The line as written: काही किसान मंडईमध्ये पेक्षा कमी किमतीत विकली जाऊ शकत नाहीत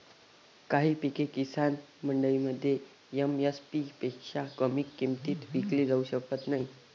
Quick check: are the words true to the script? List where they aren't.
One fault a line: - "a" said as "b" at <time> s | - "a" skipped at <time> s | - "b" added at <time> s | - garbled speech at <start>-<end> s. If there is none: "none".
- "पिके" added at 0.9 s
- "एम.एस.पी" added at 3.2 s